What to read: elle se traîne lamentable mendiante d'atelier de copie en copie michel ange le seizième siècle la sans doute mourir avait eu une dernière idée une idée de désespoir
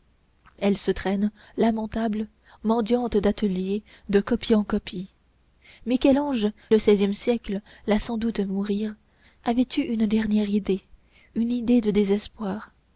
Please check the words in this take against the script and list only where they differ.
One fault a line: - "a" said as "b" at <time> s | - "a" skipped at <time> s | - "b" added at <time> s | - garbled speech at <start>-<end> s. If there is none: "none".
none